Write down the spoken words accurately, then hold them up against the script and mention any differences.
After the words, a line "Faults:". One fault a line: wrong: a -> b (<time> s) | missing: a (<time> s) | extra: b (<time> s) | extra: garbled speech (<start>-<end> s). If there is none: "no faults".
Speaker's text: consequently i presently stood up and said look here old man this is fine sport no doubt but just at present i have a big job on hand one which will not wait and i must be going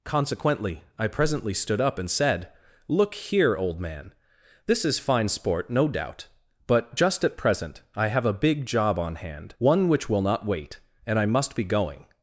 consequently i presently stood up and said look here old man this is fine sport no doubt but just at present i have a big job on hand one which will not wait and i must be going
Faults:
no faults